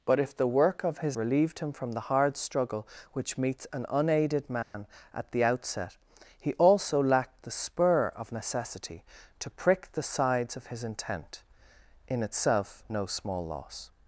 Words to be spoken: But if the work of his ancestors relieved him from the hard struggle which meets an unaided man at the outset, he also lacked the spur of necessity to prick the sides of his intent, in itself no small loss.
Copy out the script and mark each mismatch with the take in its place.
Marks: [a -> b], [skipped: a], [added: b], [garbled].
But if the work of his [skipped: ancestors] relieved him from the hard struggle which meets an unaided man at the outset, he also lacked the spur of necessity to prick the sides of his intent, in itself no small loss.